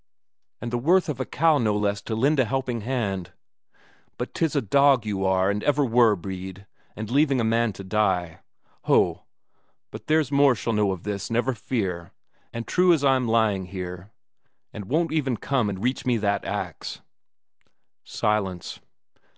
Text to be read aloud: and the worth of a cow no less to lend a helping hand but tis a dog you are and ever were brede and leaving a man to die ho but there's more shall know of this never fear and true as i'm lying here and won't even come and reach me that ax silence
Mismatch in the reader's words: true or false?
false